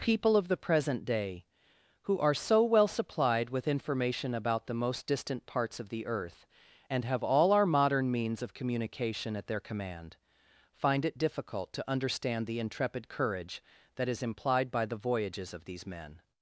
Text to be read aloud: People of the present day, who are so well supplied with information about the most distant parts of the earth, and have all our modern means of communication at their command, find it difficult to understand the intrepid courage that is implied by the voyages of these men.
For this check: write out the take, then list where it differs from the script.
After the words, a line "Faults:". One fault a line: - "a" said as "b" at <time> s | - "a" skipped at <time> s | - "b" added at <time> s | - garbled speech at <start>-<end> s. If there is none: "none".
People of the present day, who are so well supplied with information about the most distant parts of the earth, and have all our modern means of communication at their command, find it difficult to understand the intrepid courage that is implied by the voyages of these men.
Faults:
none